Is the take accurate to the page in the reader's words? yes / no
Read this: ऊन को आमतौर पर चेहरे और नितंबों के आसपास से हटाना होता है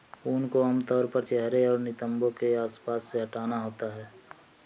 yes